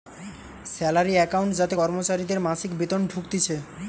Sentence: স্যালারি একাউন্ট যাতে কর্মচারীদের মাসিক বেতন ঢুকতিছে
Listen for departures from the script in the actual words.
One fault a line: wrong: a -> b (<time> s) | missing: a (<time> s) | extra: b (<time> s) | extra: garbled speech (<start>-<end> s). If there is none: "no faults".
no faults